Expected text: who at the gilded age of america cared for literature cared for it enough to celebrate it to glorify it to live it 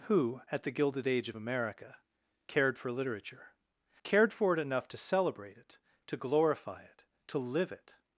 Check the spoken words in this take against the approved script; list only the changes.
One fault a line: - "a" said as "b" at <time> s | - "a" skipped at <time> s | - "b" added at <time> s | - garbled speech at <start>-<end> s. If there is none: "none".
none